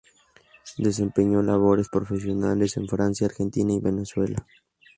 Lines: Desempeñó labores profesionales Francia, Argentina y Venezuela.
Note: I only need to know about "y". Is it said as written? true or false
true